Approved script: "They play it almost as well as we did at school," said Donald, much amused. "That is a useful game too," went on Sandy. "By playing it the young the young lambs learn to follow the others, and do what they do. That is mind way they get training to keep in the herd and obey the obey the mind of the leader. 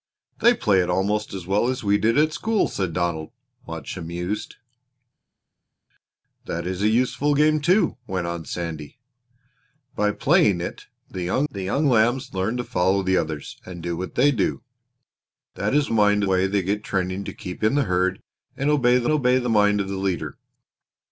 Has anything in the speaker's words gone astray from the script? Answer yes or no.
no